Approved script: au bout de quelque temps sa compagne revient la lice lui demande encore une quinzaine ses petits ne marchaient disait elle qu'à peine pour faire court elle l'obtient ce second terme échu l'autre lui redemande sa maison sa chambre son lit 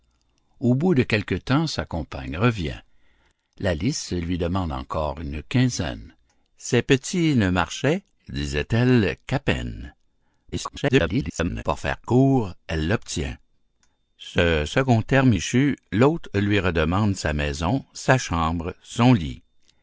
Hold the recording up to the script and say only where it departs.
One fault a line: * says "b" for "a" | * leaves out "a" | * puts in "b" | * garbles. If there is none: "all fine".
* garbles